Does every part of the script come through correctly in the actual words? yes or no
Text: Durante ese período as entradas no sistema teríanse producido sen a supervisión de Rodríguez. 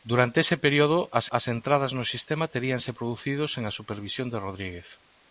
no